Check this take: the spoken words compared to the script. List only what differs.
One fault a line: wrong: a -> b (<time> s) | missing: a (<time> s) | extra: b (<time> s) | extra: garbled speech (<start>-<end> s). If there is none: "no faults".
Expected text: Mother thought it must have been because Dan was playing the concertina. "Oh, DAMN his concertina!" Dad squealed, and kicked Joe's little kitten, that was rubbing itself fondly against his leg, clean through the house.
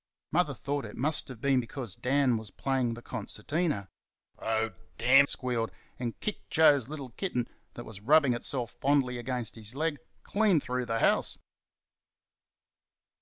missing: his concertina Dad (5.3 s)